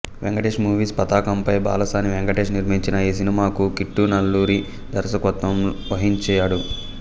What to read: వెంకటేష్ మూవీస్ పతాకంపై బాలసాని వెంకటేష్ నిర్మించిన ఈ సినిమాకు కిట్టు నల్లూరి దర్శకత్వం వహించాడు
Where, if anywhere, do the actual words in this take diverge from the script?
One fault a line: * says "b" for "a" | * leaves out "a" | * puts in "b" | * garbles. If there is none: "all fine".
all fine